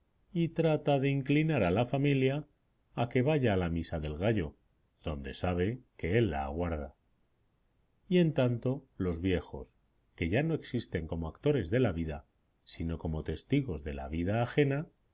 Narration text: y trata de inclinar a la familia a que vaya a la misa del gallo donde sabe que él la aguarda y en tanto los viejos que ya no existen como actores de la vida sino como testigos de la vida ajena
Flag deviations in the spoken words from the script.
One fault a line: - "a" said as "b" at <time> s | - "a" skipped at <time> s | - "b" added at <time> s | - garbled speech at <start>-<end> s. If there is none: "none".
none